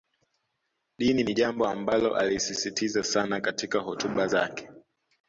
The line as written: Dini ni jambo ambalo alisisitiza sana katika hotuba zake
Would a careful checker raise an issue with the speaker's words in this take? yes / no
no